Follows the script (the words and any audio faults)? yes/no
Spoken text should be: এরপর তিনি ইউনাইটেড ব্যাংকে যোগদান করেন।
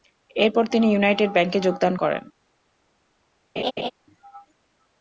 no